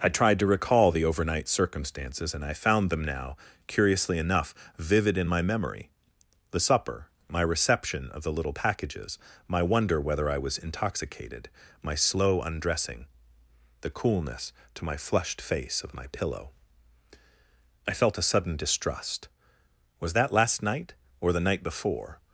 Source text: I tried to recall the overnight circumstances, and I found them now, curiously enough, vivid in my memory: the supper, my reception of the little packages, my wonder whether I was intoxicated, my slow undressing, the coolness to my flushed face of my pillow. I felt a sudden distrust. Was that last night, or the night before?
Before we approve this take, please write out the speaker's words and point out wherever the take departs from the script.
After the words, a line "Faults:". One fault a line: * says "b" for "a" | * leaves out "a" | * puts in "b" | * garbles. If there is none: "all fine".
I tried to recall the overnight circumstances, and I found them now, curiously enough, vivid in my memory: the supper, my reception of the little packages, my wonder whether I was intoxicated, my slow undressing, the coolness to my flushed face of my pillow. I felt a sudden distrust. Was that last night, or the night before?
Faults:
all fine